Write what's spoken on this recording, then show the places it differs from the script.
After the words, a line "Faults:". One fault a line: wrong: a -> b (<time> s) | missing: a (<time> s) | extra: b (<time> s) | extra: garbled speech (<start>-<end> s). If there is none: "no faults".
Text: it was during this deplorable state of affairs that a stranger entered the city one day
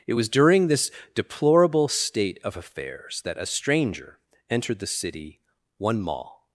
it was during this deplorable state of affairs that a stranger entered the city one mall
Faults:
wrong: day -> mall (6.0 s)